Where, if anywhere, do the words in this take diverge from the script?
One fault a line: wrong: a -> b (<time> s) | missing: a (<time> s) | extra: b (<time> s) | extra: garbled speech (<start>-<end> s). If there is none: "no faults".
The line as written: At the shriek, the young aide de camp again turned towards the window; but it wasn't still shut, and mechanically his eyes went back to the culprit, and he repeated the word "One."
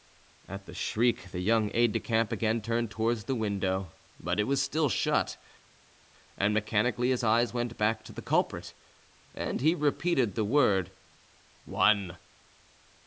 wrong: wasn't -> was (4.5 s)